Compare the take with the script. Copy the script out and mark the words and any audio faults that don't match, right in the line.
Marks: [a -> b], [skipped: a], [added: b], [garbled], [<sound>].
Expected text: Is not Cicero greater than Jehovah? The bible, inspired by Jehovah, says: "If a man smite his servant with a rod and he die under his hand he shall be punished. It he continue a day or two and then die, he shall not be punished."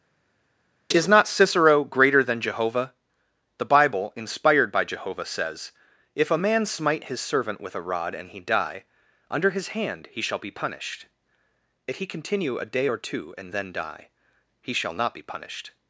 Is not Cicero greater than Jehovah? The bible, inspired by Jehovah, says: "If a man smite his servant with a rod and he die under his hand he shall be punished. [It -> If] he continue a day or two and then die, he shall not be punished."